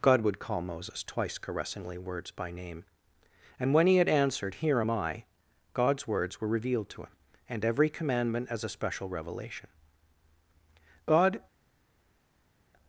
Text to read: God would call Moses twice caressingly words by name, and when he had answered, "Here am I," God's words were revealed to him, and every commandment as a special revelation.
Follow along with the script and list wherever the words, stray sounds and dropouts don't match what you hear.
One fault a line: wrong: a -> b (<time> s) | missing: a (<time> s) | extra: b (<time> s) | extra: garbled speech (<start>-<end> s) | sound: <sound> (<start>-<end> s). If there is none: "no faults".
extra: God (11.0 s)